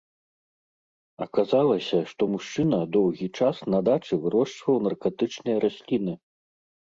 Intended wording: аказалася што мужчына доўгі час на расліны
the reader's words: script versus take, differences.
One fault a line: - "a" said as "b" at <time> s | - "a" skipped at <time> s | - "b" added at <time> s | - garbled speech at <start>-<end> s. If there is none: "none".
- "дачы вырошчваў наркатычныя" added at 3.9 s